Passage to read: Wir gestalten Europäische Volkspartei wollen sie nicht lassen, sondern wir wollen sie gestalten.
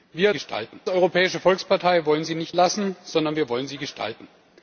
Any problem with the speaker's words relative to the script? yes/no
no